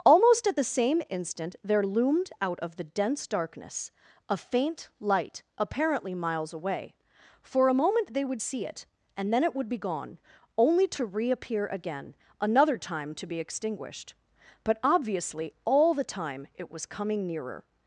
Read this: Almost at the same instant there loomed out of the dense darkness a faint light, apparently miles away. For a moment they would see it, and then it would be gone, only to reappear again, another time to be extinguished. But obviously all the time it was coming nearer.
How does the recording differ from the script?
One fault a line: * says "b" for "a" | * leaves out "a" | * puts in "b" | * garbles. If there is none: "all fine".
all fine